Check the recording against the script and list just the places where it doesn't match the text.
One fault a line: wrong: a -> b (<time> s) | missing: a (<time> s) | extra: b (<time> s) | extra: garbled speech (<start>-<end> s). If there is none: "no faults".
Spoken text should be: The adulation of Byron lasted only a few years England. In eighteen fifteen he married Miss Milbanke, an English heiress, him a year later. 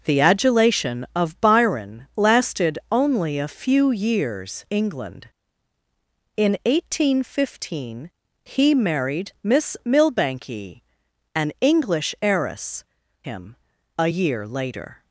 no faults